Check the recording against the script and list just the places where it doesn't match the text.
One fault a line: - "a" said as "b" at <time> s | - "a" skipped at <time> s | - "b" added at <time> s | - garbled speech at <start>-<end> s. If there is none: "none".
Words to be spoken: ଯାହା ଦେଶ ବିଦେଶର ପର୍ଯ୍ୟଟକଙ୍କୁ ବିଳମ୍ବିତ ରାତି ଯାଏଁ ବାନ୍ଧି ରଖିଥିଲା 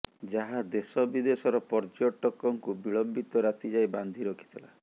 none